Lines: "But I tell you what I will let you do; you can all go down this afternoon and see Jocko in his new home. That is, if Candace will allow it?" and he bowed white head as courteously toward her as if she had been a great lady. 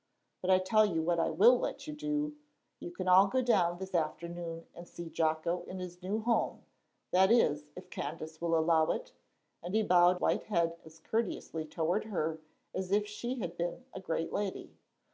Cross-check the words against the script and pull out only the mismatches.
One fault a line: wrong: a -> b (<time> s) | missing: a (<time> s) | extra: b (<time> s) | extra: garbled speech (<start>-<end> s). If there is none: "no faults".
no faults